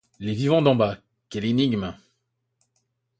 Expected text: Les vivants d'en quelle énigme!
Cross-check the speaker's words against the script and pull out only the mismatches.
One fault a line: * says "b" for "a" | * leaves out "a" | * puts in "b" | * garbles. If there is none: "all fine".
* puts in "bas"